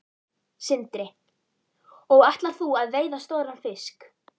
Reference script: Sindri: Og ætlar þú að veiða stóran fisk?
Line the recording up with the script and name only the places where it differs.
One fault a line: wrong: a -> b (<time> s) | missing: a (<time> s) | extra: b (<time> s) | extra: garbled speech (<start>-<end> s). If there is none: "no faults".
no faults